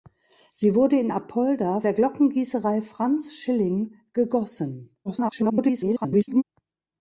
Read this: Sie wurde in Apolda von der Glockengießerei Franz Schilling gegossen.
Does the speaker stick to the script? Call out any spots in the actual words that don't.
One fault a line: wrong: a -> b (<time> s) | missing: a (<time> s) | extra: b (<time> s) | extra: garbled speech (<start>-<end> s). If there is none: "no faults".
missing: von (1.8 s)
extra: garbled speech (5.0-6.4 s)